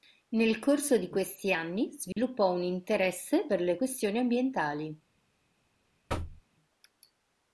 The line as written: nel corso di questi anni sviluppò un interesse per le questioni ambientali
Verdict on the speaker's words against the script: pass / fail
pass